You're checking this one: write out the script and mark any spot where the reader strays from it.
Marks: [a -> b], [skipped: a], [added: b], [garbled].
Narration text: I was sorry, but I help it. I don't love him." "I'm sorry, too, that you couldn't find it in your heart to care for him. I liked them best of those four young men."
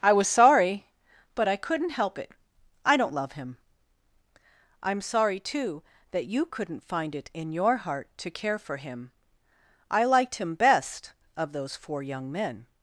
I was sorry, but I [added: couldn't] help it. I don't love him." "I'm sorry, too, that you couldn't find it in your heart to care for him. I liked [them -> him] best of those four young men."